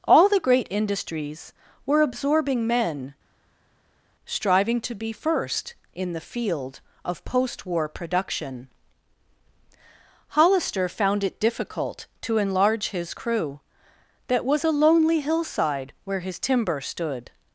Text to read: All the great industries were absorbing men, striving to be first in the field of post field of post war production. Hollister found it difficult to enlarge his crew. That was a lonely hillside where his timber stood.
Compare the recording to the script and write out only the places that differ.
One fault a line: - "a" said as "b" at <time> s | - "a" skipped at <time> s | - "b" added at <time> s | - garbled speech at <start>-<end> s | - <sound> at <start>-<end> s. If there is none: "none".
- "field of post" skipped at 7.7 s